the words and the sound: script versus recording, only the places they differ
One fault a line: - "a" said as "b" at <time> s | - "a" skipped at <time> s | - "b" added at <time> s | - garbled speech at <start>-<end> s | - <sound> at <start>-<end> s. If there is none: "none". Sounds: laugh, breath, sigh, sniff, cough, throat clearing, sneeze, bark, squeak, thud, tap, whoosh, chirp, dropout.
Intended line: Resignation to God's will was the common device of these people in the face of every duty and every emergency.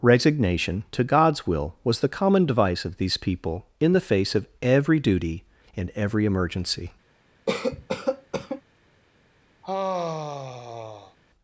- cough at 7.5-8.6 s
- sigh at 9.6-11.2 s